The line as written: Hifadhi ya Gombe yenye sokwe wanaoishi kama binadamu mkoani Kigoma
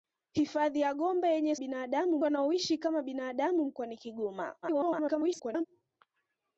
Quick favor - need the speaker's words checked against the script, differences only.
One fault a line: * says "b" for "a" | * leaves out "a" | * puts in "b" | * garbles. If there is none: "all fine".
* says "binadamu" for "sokwe"
* garbles